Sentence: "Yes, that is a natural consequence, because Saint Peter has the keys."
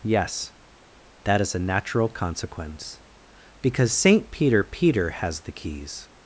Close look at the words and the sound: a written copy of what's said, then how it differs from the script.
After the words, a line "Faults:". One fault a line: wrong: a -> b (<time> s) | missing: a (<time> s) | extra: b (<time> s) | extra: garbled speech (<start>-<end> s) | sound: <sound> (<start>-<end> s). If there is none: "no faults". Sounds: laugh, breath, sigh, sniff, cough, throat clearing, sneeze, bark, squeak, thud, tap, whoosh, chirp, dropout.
"Yes, that is a natural consequence, because Saint Peter Peter has the keys."
Faults:
extra: Peter (4.6 s)